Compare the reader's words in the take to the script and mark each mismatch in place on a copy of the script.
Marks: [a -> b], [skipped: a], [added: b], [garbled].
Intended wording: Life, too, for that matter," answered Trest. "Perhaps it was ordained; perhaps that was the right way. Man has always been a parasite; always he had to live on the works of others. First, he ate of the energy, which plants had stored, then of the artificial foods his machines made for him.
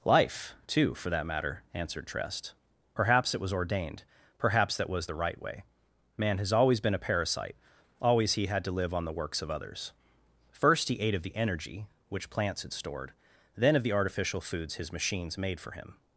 Life, too, for that matter," answered Trest. "Perhaps it was ordained; perhaps that was the right way. Man has always been a parasite; always he had to live on the works of others. First, he ate of the energy, which plants had stored, then of the artificial foods his machines made for him.